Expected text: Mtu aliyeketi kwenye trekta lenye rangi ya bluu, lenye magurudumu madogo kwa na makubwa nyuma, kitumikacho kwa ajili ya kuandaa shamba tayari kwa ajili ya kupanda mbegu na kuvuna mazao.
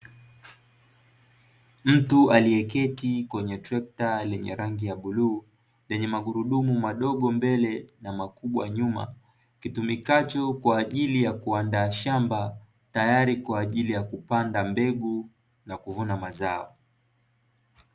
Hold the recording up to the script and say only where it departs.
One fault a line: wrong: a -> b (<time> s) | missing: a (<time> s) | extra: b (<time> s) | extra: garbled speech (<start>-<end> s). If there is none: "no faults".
wrong: kwa -> mbele (7.3 s)